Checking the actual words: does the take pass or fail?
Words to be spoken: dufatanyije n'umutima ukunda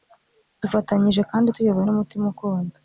fail